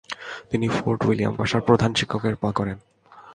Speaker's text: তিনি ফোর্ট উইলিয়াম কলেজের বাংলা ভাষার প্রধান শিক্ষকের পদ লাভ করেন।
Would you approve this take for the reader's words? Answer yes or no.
no